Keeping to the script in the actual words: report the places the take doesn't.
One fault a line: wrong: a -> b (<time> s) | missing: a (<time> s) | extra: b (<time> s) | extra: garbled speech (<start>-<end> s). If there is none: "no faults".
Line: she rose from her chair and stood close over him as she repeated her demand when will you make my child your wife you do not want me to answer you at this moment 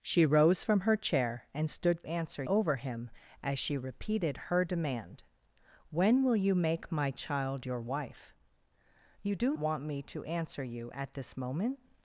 wrong: close -> answer (2.0 s)
missing: not (9.5 s)